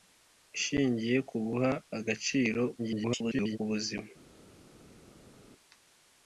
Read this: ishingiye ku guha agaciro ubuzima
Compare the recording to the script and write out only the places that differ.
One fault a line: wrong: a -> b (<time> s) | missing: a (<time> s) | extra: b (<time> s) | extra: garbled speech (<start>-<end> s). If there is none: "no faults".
extra: garbled speech (2.8-3.6 s)